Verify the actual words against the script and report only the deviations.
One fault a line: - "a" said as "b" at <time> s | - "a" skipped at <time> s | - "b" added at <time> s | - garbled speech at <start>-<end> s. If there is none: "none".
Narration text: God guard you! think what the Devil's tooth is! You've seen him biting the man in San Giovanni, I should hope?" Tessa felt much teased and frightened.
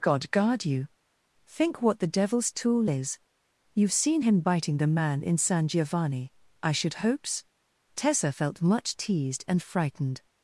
- "tooth" said as "tool" at 2.5 s
- "hope" said as "hopes" at 7.0 s